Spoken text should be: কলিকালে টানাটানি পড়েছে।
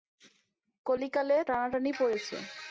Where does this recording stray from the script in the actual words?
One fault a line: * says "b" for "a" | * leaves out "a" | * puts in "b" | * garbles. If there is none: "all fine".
all fine